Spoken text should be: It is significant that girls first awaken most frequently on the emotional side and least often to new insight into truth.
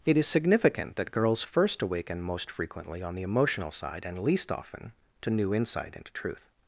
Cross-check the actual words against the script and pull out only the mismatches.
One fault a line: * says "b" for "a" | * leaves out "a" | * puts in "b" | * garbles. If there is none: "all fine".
all fine